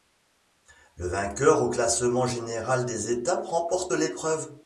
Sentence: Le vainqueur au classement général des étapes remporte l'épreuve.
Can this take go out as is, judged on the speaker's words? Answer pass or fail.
pass